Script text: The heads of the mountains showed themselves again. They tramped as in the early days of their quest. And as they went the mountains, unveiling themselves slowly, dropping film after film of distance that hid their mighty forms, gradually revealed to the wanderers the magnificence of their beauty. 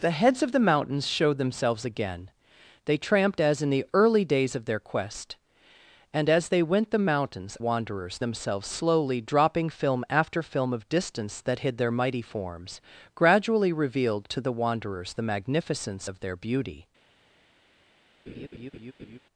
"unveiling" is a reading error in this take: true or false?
true